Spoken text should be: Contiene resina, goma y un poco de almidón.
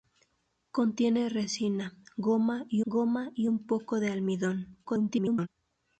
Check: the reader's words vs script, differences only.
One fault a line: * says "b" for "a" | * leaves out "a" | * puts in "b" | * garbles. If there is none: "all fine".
* puts in "goma y"
* garbles